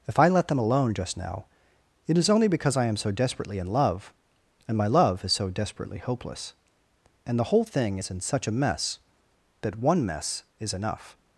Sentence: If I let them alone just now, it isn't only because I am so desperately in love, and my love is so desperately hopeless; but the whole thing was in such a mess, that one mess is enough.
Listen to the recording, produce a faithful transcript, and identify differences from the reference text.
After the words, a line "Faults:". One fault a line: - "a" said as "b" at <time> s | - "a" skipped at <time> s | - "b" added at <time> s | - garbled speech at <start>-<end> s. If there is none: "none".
If I let them alone just now, it is only because I am so desperately in love, and my love is so desperately hopeless; and the whole thing is in such a mess, that one mess is enough.
Faults:
- "isn't" said as "is" at 2.2 s
- "but" said as "and" at 7.2 s
- "was" said as "is" at 8.0 s